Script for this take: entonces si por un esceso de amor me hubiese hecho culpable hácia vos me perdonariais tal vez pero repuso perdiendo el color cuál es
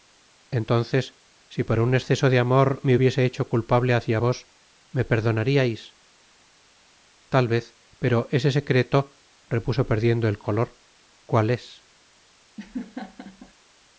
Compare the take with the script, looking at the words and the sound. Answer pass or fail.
fail